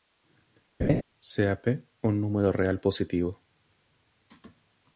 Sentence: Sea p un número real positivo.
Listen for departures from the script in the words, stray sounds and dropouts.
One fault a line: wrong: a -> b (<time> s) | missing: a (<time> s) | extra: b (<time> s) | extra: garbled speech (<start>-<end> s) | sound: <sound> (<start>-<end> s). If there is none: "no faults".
sound: laugh (0.8-1.0 s)